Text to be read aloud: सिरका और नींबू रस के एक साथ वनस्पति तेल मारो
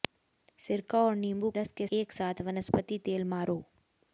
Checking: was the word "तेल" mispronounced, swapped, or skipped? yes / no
no